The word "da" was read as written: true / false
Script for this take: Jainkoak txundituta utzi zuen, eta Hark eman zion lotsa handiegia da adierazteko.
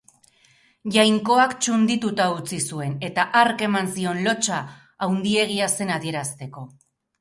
false